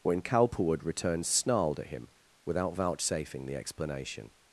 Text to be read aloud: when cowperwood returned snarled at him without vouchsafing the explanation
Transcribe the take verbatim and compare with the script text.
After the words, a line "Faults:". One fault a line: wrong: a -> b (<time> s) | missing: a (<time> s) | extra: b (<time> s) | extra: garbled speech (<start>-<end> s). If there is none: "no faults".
when cowperwood returned snarled at him without vouchsafing the explanation
Faults:
no faults